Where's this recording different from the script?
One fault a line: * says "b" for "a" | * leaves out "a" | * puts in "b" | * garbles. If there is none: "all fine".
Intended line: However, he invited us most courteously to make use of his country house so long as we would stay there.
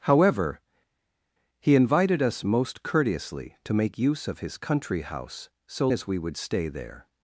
* leaves out "long"